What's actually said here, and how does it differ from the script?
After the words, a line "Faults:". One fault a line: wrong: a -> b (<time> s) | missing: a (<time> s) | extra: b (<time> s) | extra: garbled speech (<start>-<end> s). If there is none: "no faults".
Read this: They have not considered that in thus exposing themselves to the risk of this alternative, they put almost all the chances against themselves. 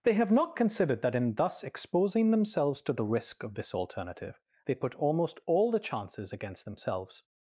They have not considered that in thus exposing themselves to the risk of this alternative, they put almost all the chances against themselves.
Faults:
no faults